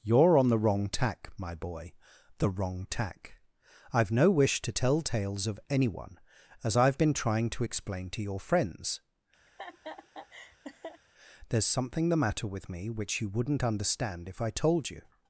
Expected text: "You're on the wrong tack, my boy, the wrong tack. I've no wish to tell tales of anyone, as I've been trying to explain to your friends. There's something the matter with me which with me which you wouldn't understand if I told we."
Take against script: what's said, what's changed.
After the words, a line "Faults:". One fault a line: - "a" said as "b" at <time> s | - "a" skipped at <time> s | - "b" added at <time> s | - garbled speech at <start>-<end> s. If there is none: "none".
"You're on the wrong tack, my boy, the wrong tack. I've no wish to tell tales of anyone, as I've been trying to explain to your friends. There's something the matter with me which you wouldn't understand if I told you."
Faults:
- "with me which" skipped at 13.2 s
- "we" said as "you" at 14.9 s